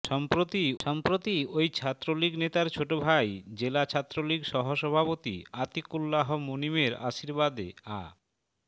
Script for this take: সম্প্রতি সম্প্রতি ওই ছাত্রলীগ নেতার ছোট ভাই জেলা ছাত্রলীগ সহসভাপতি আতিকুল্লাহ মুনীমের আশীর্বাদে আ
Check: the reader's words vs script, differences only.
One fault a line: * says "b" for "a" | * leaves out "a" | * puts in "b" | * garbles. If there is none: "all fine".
all fine